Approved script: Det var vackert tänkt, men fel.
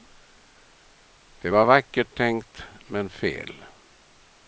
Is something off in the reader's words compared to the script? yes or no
no